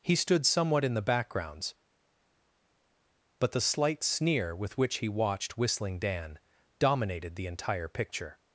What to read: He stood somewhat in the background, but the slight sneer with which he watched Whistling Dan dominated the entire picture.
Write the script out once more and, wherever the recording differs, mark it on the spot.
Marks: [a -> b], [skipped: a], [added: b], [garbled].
He stood somewhat in the [background, -> backgrounds] but the slight sneer with which he watched Whistling Dan dominated the entire picture.